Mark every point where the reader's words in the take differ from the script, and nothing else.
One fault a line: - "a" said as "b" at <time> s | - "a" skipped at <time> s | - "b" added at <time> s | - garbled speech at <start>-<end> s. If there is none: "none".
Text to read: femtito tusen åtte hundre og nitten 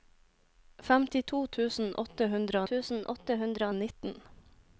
- "tusen åtte hundre" added at 2.7 s